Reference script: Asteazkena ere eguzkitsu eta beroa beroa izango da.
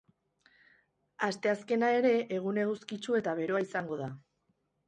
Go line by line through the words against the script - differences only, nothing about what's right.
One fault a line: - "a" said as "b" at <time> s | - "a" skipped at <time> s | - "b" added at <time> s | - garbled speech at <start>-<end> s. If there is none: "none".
- "egun" added at 2.4 s
- "beroa" skipped at 3.6 s